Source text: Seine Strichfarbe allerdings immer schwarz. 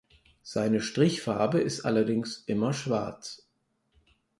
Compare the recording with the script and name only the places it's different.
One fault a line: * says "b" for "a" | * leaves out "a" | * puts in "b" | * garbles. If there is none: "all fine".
* puts in "ist"